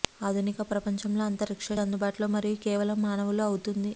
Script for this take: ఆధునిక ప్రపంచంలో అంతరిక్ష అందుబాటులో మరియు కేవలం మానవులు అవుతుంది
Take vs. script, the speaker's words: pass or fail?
pass